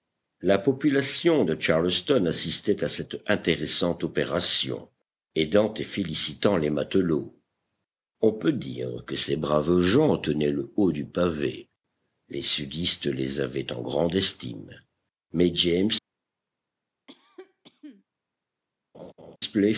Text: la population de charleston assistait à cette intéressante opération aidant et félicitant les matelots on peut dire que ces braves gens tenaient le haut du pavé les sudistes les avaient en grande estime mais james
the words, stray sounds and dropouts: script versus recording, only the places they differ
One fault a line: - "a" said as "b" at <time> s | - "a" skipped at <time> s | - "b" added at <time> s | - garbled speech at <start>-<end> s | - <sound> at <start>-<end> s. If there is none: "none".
- cough at 17.1-18.0 s
- laugh at 18.9-19.4 s